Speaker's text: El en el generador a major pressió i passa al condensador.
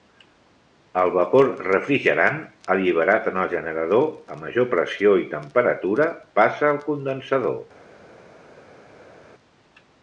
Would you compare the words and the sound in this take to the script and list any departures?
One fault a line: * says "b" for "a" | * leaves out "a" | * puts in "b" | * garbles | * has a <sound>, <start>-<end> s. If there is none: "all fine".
* puts in "vapor refrigerant alliberat"
* puts in "temperatura"